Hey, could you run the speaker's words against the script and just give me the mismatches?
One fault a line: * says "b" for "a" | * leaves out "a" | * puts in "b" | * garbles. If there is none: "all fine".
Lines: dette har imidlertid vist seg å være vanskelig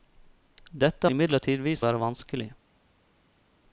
* leaves out "har"
* leaves out "seg"